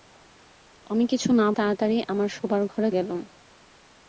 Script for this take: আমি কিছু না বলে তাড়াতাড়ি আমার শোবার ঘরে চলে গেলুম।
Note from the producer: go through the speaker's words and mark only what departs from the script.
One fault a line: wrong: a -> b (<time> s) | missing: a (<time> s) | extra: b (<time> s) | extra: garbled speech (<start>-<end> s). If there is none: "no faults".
missing: বলে (1.5 s)
missing: চলে (2.9 s)